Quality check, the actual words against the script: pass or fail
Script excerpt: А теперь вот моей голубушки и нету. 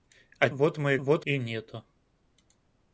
fail